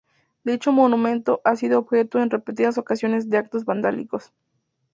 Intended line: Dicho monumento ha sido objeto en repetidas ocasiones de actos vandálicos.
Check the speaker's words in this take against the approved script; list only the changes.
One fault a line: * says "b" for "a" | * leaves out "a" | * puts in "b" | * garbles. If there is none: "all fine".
all fine